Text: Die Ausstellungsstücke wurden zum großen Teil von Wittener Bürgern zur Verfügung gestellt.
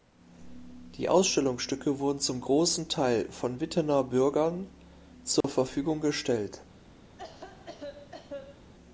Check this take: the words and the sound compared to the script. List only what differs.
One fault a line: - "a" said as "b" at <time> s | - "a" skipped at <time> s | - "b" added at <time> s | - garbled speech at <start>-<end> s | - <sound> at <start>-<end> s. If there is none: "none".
- dropout at 5.4-5.4 s
- cough at 7.2-8.7 s